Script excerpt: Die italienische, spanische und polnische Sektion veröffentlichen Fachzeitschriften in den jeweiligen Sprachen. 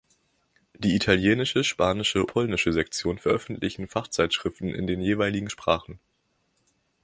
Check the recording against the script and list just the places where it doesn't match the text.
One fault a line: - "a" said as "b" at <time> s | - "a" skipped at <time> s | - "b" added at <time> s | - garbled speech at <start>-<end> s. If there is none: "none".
- "und" skipped at 2.2 s